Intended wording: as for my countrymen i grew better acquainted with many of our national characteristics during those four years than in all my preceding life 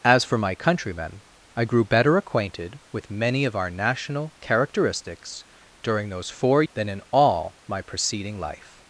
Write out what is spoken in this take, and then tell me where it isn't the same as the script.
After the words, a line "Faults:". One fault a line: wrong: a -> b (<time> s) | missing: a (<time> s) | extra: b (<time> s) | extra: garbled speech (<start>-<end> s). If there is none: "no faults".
as for my countrymen i grew better acquainted with many of our national characteristics during those four than in all my preceding life
Faults:
missing: years (6.6 s)